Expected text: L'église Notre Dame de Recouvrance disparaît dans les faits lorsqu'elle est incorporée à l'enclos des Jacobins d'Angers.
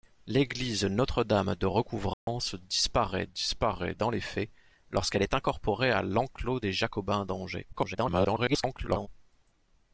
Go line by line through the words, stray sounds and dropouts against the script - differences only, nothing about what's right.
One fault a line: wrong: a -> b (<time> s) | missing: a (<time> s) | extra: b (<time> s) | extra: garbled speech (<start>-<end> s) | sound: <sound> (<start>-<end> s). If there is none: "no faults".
sound: dropout (2.1-2.3 s)
extra: disparaît (3.3 s)
extra: garbled speech (7.7-9.1 s)